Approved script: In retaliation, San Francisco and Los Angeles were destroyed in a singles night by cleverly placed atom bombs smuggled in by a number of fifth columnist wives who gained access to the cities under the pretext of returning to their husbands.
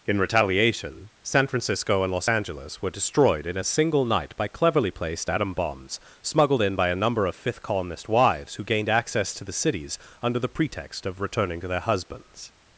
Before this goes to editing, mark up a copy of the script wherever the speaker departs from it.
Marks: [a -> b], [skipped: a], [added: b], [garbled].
In retaliation, San Francisco and Los Angeles were destroyed in a [singles -> single] night by cleverly placed atom bombs smuggled in by a number of fifth columnist wives who gained access to the cities under the pretext of returning to their husbands.